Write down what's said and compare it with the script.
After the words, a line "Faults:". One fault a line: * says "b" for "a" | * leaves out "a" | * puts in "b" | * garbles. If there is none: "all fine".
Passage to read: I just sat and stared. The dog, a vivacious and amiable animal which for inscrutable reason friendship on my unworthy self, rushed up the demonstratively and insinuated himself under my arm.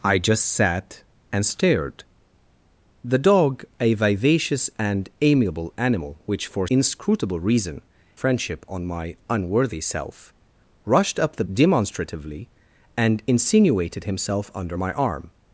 I just sat and stared. The dog, a vivacious and amiable animal which for inscrutable reason friendship on my unworthy self, rushed up the demonstratively and insinuated himself under my arm.
Faults:
all fine